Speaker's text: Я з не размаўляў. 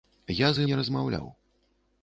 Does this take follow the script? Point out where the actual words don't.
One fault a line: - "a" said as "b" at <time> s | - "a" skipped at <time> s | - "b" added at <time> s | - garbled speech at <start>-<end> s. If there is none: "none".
none